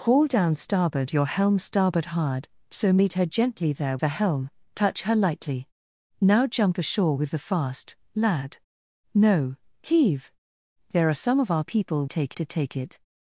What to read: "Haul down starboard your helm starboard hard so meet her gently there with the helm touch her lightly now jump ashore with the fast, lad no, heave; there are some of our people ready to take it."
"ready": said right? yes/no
no